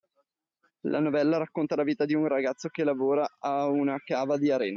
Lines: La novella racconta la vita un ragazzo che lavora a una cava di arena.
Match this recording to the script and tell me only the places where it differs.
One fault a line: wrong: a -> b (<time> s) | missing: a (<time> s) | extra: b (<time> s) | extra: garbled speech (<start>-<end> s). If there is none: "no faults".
extra: di (2.0 s)